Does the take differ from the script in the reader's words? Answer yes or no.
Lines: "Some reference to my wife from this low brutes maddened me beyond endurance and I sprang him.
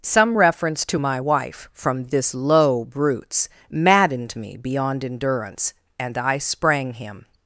no